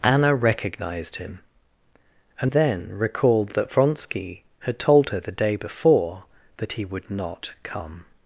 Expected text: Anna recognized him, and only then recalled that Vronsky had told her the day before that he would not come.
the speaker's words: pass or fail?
fail